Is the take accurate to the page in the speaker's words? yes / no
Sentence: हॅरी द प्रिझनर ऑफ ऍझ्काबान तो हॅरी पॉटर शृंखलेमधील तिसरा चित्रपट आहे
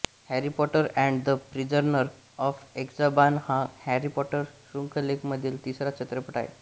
no